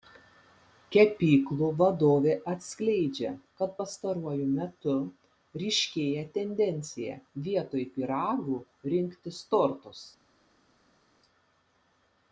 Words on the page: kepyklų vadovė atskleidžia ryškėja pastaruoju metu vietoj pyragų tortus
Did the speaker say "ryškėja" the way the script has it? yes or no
no